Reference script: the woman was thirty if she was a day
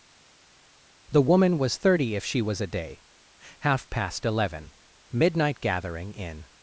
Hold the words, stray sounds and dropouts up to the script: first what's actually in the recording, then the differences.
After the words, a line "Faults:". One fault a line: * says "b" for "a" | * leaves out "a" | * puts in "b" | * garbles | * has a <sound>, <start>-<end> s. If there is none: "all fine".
the woman was thirty if she was a day half past eleven midnight gathering in
Faults:
* puts in "half past eleven midnight gathering in"